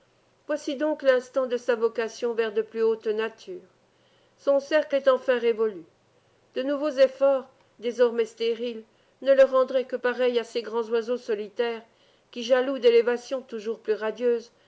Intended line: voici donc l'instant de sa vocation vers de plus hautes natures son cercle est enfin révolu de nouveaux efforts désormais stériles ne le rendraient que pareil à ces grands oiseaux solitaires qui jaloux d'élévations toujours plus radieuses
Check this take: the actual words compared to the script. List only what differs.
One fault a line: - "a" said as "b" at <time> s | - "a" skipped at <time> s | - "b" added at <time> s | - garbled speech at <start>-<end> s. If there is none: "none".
none